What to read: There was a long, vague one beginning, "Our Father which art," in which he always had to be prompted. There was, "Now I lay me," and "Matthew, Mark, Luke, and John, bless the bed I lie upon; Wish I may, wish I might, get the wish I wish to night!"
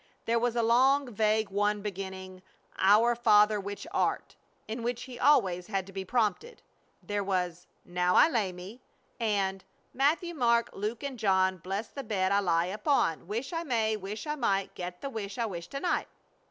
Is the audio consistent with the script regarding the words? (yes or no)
yes